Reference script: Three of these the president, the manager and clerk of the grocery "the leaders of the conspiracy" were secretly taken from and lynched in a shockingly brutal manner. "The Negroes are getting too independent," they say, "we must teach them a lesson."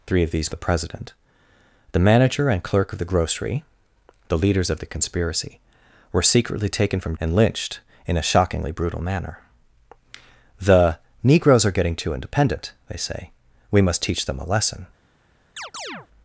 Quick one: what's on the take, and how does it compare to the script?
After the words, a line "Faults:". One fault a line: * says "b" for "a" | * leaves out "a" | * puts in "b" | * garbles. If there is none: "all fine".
Three of these the president, the manager and clerk of the grocery "the leaders of the conspiracy" were secretly taken from and lynched in a shockingly brutal manner. "The Negroes are getting too independent," they say, "we must teach them a lesson."
Faults:
all fine